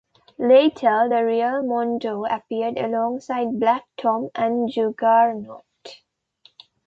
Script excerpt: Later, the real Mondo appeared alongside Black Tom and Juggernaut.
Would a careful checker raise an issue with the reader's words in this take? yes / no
no